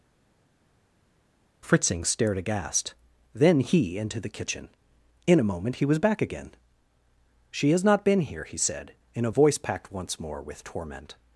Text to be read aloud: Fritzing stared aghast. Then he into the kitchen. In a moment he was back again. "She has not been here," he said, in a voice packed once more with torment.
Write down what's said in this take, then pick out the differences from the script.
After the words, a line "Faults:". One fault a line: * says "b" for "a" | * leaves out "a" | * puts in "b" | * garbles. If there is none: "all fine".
Fritzing stared aghast. Then he into the kitchen. In a moment he was back again. "She has not been here," he said, in a voice packed once more with torment.
Faults:
all fine